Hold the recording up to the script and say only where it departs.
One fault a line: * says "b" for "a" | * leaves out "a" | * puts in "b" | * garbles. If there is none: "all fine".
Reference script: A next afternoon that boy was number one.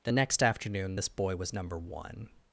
* says "The" for "A"
* says "this" for "that"